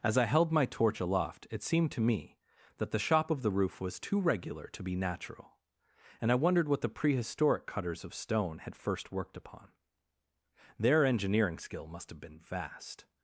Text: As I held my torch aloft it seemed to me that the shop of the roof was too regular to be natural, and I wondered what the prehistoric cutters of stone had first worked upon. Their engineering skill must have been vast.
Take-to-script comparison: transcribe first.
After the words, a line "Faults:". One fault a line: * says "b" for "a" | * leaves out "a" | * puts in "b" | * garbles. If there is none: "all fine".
As I held my torch aloft it seemed to me that the shop of the roof was too regular to be natural, and I wondered what the prehistoric cutters of stone had first worked upon. Their engineering skill must have been vast.
Faults:
all fine